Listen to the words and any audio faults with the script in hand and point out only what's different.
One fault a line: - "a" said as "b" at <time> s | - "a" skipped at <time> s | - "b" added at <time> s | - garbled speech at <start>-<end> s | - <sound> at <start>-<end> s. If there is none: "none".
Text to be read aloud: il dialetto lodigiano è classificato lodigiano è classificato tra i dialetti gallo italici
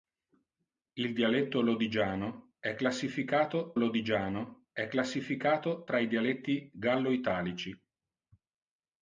none